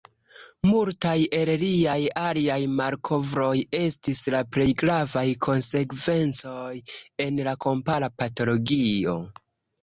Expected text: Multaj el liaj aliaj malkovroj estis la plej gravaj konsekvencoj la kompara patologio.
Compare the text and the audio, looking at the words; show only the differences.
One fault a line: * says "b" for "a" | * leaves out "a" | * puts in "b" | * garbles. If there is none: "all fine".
* puts in "en"